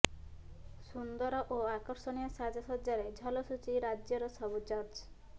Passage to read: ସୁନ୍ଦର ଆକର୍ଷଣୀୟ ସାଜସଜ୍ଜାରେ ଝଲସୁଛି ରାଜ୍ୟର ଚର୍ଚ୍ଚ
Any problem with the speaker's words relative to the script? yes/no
yes